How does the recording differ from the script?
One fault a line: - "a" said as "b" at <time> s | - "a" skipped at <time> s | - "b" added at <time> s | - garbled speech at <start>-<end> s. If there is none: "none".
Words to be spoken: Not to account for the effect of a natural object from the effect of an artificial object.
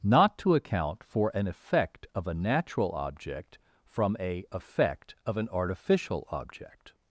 - "the" said as "an" at 1.4 s
- "the" said as "a" at 4.2 s